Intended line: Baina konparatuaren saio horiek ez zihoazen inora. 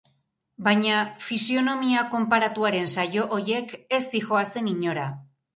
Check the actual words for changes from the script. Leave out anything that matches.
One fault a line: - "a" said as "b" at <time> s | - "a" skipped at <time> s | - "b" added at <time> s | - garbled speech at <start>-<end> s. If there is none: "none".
- "fisionomia" added at 1.2 s